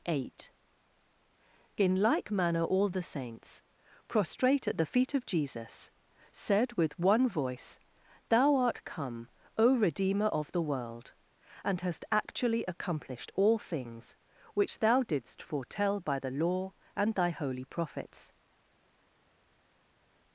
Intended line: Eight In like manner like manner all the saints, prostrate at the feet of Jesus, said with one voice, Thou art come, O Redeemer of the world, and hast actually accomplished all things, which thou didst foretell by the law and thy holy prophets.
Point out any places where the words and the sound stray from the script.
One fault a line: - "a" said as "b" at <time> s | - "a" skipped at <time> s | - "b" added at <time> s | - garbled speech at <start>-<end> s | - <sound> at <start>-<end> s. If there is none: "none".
- "like manner" skipped at 2.6 s